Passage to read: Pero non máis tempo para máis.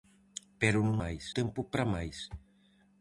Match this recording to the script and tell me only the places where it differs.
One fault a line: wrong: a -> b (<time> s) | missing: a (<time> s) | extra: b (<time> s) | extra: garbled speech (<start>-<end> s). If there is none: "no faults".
no faults